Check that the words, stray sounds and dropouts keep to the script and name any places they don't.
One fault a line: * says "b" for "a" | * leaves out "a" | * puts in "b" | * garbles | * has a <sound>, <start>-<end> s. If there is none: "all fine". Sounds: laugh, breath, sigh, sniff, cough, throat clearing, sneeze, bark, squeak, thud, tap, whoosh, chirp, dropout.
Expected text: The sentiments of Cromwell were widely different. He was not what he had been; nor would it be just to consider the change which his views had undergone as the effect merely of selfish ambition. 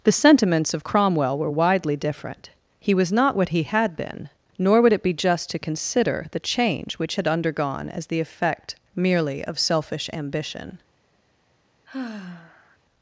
* leaves out "his views"
* has a sigh, 11.9-12.8 s